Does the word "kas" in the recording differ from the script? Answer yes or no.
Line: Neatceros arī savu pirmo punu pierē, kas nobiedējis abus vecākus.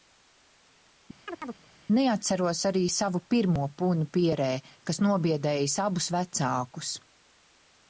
no